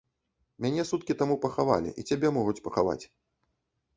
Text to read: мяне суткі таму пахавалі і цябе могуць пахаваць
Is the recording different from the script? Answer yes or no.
no